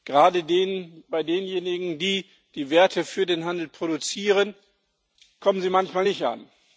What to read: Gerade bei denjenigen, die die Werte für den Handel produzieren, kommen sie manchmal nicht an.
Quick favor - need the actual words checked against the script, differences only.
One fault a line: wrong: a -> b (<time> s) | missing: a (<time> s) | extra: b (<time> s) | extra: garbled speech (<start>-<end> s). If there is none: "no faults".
no faults